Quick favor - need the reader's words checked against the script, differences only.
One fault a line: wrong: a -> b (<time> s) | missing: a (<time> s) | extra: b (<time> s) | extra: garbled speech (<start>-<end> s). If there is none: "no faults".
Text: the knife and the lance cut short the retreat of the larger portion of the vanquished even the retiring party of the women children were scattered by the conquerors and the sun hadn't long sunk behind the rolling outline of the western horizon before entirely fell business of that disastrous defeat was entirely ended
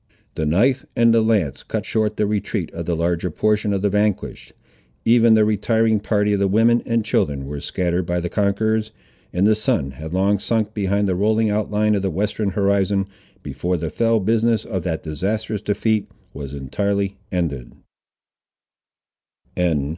extra: and (6.9 s)
wrong: hadn't -> had (9.9 s)
wrong: entirely -> the (13.8 s)